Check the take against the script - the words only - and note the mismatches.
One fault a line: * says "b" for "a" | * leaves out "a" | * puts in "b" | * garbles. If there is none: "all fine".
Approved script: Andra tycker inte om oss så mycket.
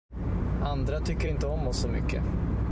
all fine